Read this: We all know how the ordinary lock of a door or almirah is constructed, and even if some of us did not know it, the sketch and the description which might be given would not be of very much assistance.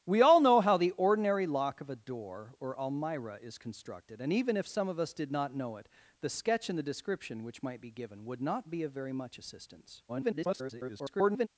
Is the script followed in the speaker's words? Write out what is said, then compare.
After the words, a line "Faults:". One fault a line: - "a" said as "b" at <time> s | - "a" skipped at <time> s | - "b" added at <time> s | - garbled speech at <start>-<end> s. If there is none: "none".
We all know how the ordinary lock of a door or almirah is constructed, and even if some of us did not know it, the sketch and the description which might be given would not be of very much assistance. [garbled]
Faults:
- garbled speech at 10.1-11.5 s